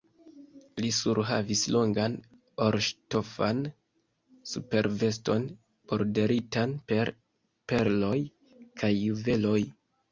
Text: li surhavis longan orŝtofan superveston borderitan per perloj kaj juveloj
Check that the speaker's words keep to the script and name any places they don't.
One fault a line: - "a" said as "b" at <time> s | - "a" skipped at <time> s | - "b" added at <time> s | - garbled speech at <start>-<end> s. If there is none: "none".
none